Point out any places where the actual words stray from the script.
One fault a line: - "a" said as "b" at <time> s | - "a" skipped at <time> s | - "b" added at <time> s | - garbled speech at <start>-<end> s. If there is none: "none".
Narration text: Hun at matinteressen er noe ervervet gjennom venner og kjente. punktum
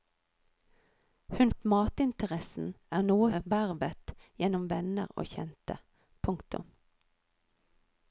none